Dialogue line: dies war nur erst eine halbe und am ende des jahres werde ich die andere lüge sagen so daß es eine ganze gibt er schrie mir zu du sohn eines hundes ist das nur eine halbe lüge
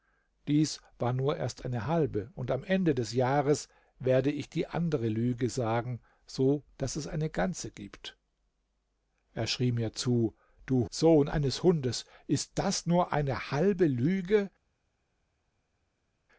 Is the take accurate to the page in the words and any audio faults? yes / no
yes